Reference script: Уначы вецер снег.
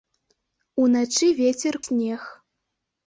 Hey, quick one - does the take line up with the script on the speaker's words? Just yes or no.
yes